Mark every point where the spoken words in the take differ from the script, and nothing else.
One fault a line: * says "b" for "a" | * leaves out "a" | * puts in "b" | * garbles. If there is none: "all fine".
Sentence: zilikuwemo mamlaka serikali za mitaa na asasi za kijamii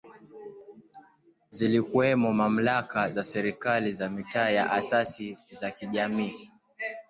* puts in "za"